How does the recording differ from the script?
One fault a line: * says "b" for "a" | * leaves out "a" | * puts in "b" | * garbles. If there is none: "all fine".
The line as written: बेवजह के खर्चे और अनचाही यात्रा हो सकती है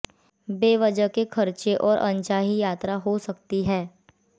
all fine